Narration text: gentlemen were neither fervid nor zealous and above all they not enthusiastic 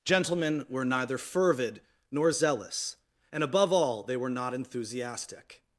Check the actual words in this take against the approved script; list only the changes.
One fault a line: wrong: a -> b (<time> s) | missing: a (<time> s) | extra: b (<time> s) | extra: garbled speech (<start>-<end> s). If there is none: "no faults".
extra: were (4.2 s)